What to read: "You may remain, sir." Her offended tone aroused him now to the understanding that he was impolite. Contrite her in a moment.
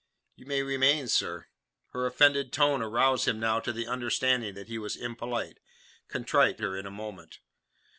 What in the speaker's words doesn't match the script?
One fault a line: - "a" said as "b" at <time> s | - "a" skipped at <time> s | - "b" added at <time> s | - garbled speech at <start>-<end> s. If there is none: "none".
none